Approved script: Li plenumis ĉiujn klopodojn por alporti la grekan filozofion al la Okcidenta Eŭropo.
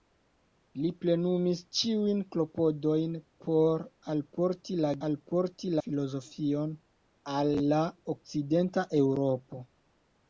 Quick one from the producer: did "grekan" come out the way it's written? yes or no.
no